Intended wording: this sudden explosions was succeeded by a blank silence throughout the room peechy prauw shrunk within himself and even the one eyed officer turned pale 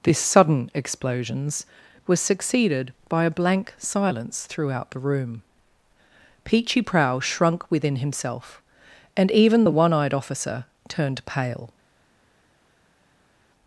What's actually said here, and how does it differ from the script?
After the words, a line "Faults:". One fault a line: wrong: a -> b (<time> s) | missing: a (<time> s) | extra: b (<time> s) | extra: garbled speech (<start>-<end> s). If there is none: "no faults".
this sudden explosions was succeeded by a blank silence throughout the room peechy prauw shrunk within himself and even the one eyed officer turned pale
Faults:
no faults